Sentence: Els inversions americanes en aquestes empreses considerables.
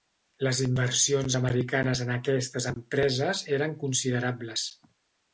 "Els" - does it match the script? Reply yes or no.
no